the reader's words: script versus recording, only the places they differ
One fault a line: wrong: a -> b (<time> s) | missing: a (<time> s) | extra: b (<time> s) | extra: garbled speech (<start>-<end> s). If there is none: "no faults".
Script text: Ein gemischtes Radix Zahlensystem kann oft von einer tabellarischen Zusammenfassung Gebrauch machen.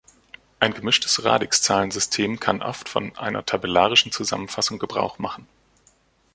no faults